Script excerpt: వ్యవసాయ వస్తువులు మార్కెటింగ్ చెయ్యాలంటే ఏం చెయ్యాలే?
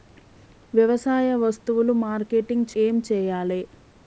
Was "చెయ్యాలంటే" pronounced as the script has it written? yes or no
no